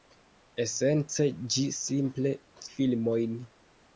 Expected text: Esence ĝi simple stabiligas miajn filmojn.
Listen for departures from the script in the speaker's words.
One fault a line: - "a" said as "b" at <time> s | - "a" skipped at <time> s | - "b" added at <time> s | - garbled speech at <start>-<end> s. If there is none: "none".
- "stabiligas miajn" skipped at 2.3 s